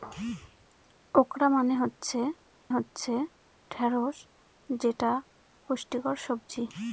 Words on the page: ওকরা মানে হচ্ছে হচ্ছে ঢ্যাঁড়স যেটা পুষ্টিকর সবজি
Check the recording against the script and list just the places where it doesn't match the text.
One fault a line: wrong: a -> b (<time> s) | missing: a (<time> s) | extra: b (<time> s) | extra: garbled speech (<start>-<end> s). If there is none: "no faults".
no faults